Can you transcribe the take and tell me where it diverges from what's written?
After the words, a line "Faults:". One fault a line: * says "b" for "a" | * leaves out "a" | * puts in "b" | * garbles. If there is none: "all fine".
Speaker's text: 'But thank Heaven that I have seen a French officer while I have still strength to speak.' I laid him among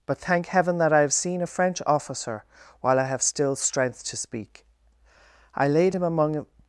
'But thank Heaven that I have seen a French officer while I have still strength to speak.' I laid him among
Faults:
all fine